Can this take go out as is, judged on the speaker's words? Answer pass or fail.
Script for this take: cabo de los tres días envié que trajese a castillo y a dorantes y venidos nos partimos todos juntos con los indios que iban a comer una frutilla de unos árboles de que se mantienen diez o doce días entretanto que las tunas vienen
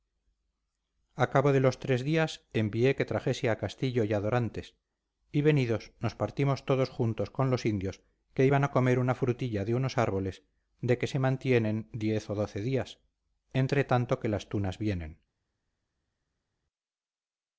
pass